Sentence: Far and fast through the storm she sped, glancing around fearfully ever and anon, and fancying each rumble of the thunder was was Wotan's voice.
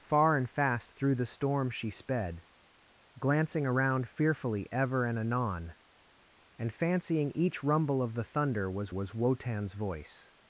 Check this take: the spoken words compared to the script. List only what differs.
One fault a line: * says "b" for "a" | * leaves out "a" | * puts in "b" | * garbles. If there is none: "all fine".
all fine